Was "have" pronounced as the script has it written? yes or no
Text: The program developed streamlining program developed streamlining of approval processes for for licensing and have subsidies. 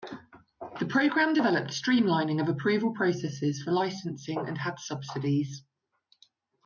no